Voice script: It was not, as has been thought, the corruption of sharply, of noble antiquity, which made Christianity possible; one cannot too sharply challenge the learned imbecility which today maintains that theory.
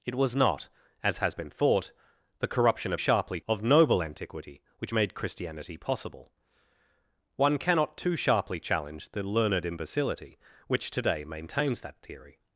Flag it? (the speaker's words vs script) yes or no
no